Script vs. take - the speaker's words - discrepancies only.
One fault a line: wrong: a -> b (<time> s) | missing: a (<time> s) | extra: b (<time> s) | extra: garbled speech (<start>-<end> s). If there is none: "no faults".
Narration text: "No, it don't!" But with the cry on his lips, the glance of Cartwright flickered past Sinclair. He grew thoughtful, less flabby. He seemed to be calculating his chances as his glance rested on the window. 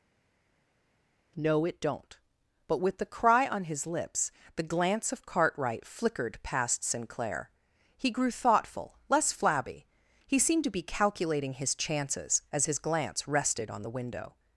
no faults